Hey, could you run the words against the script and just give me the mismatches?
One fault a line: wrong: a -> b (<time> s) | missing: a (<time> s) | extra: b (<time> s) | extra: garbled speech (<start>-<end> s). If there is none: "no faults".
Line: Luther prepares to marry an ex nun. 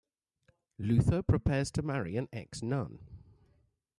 no faults